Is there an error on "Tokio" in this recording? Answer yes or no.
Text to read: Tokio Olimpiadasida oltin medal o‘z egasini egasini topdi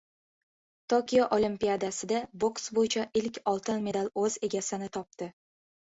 no